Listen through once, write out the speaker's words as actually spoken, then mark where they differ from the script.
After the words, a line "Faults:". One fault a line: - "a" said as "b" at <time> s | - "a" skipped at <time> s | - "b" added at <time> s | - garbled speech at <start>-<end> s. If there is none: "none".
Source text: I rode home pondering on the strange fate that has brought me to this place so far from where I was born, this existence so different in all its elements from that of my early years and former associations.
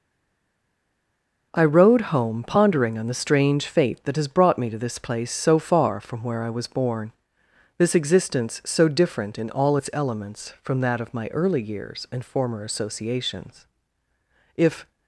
I rode home pondering on the strange fate that has brought me to this place so far from where I was born, this existence so different in all its elements from that of my early years and former associations. If
Faults:
- "If" added at 14.6 s